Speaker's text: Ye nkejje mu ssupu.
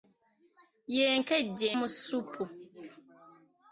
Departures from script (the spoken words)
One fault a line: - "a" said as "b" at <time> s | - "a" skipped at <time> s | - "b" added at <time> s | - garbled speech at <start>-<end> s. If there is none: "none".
none